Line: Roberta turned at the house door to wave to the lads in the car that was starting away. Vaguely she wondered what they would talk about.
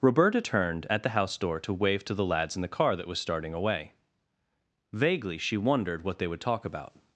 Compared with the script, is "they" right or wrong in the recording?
right